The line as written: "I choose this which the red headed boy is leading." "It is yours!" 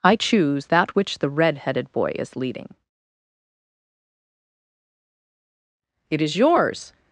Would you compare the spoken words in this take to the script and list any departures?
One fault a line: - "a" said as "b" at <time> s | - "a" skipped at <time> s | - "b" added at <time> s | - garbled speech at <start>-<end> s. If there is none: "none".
- "this" said as "that" at 0.6 s